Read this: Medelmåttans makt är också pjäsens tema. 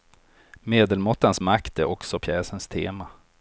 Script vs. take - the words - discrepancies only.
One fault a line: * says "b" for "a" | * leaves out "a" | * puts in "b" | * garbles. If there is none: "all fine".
all fine